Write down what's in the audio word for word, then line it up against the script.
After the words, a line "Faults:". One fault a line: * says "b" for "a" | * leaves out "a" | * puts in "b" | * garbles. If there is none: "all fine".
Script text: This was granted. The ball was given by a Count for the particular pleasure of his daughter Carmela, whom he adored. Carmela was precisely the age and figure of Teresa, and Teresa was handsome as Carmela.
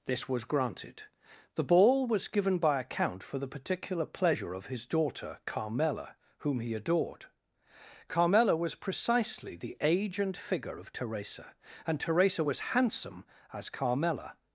This was granted. The ball was given by a Count for the particular pleasure of his daughter Carmela, whom he adored. Carmela was precisely the age and figure of Teresa, and Teresa was handsome as Carmela.
Faults:
all fine